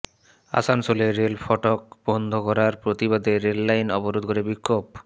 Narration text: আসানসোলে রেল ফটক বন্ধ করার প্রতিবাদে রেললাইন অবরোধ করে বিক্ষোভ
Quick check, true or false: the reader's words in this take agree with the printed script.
true